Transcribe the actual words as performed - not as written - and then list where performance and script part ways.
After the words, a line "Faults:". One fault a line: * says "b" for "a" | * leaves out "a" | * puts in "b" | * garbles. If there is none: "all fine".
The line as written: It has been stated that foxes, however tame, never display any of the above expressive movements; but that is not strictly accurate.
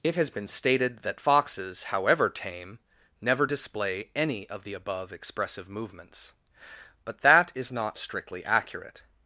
It has been stated that foxes, however tame, never display any of the above expressive movements; but that is not strictly accurate.
Faults:
all fine